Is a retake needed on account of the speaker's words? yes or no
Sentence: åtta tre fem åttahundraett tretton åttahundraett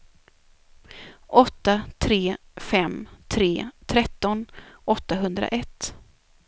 yes